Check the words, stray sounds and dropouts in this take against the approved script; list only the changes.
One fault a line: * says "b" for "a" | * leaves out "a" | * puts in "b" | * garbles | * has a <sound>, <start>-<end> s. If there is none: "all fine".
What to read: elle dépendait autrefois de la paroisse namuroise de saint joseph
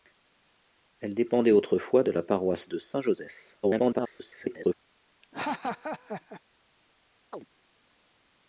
* leaves out "namuroise"
* garbles
* has a laugh, 5.2-6.4 s
* has a chirp, 7.3-7.4 s